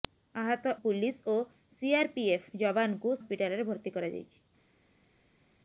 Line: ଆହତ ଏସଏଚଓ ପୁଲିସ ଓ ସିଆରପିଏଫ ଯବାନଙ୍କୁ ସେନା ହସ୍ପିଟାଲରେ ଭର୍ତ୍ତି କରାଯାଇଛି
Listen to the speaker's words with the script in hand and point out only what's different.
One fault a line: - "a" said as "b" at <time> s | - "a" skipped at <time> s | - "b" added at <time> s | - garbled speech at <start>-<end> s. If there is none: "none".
- "ଏସଏଚଓ" skipped at 0.7 s
- "ସେନା" skipped at 3.2 s